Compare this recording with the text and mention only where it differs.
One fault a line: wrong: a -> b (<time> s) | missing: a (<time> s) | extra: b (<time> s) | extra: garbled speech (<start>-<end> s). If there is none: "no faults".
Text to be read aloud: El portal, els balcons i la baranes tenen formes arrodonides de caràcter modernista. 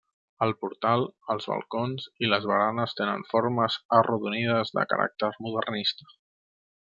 wrong: la -> les (2.3 s)